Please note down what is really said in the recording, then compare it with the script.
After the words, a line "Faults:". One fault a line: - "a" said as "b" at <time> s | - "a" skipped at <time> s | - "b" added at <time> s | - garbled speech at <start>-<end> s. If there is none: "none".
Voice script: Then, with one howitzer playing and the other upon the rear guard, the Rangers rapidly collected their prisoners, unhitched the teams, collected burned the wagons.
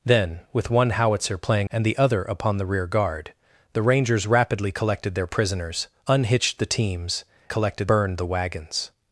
Then, with one howitzer playing and the other upon the rear guard, the Rangers rapidly collected their prisoners, unhitched the teams, collected burned the wagons.
Faults:
none